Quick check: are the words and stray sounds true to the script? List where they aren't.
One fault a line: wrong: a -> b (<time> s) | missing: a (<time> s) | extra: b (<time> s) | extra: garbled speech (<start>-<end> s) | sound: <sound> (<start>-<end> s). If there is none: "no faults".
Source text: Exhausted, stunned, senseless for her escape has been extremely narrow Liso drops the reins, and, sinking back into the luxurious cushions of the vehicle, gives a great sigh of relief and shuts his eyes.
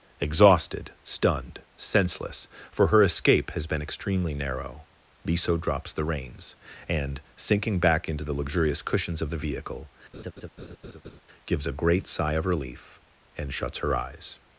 sound: laugh (10.1-11.2 s)
wrong: his -> her (13.8 s)